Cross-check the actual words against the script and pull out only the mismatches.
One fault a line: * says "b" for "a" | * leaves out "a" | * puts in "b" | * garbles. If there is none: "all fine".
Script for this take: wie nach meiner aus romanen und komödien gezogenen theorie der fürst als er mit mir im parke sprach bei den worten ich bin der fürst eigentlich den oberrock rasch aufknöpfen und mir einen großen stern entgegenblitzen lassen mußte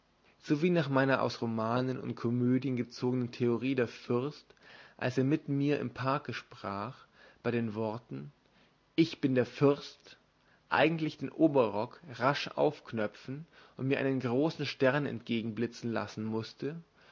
all fine